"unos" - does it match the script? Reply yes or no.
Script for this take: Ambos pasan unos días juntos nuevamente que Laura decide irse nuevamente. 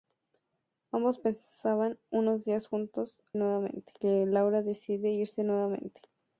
yes